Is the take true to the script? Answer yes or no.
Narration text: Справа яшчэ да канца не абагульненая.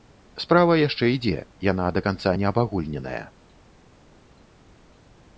no